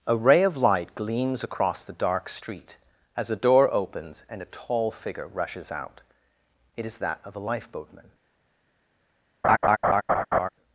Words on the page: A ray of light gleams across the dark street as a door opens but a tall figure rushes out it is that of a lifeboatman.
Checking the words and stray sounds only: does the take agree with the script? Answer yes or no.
no